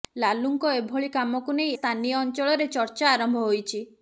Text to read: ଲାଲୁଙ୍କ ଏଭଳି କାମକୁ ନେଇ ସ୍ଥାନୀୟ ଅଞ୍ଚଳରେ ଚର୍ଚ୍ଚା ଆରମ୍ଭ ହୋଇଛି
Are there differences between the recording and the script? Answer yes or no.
no